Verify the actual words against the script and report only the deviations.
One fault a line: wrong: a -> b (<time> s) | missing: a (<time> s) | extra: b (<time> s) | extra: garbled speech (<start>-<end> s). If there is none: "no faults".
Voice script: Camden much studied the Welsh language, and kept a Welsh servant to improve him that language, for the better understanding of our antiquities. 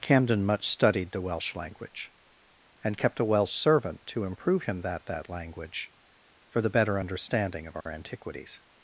extra: that (5.0 s)